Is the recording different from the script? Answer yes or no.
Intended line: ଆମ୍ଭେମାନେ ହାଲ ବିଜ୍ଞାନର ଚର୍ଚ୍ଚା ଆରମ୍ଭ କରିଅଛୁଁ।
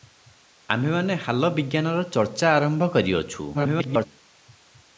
yes